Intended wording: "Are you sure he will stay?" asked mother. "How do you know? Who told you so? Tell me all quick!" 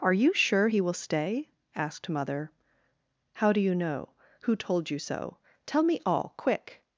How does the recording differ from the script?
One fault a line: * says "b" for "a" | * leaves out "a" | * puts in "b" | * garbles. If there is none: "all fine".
all fine